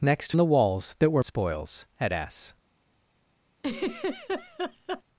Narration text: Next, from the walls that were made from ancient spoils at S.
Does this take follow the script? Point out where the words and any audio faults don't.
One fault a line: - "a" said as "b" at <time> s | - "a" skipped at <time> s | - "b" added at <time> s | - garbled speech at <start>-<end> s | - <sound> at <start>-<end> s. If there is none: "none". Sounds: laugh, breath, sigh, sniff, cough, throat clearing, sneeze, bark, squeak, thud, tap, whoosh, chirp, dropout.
- "from" skipped at 0.3 s
- "made from ancient" skipped at 1.2 s
- laugh at 3.6-5.0 s